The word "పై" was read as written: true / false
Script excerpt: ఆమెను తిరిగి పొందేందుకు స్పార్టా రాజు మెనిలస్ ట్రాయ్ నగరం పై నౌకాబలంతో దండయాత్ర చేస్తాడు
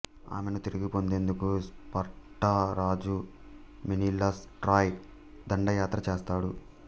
false